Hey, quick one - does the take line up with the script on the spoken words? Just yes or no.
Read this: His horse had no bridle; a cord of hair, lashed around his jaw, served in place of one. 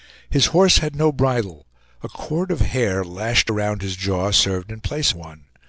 no